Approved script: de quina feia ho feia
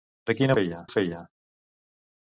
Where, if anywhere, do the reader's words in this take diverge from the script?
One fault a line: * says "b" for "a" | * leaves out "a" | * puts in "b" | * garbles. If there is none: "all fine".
all fine